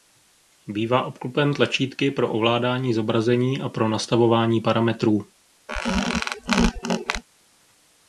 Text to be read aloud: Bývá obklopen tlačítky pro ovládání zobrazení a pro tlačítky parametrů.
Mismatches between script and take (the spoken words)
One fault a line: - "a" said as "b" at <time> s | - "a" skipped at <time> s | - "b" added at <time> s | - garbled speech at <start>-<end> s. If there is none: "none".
- "tlačítky" said as "nastavování" at 3.9 s